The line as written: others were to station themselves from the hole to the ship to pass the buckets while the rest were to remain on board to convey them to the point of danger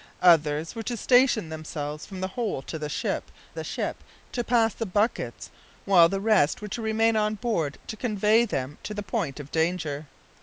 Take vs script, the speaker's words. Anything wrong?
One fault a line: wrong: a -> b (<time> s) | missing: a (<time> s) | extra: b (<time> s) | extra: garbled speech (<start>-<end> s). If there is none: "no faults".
extra: the ship (3.5 s)